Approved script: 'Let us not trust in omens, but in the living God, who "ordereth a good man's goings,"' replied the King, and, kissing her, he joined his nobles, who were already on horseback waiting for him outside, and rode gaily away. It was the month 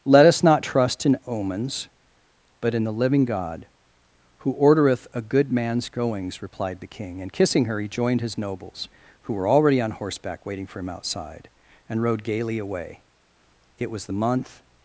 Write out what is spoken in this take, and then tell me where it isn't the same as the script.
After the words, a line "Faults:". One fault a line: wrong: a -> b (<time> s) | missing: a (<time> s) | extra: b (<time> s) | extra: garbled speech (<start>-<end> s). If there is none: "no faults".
'Let us not trust in omens, but in the living God, who "ordereth a good man's goings,"' replied the King, and, kissing her, he joined his nobles, who were already on horseback waiting for him outside, and rode gaily away. It was the month
Faults:
no faults